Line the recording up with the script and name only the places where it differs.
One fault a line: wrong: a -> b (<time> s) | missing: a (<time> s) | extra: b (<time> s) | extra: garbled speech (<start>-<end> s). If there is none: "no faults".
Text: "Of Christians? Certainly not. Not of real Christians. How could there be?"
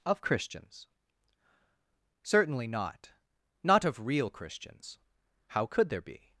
no faults